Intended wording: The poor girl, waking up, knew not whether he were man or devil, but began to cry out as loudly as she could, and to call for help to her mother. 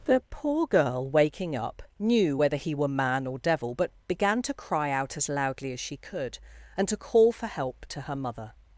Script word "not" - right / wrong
wrong